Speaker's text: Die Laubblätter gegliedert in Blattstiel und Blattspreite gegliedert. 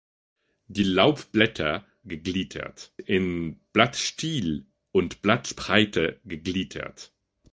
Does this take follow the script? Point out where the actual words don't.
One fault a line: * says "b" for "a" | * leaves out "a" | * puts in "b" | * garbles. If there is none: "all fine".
all fine